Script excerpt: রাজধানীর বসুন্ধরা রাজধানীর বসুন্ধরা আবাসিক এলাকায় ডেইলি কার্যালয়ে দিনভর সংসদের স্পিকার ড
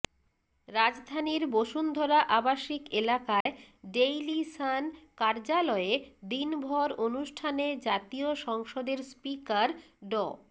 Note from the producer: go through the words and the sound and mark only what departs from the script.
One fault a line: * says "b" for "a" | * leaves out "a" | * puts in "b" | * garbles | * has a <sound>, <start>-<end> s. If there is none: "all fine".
* leaves out "রাজধানীর বসুন্ধরা"
* has a dropout, 3.4-3.5 s
* puts in "সান"
* puts in "অনুষ্ঠানে জাতীয়"